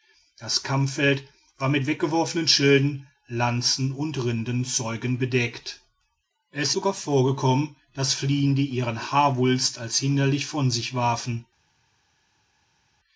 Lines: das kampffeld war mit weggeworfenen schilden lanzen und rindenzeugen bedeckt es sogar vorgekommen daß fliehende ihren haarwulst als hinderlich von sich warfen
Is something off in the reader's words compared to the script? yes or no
no